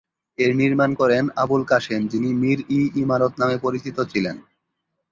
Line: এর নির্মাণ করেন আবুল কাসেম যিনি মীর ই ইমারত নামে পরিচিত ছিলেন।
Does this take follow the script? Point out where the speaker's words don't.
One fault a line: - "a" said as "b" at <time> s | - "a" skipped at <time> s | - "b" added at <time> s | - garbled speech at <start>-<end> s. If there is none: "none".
none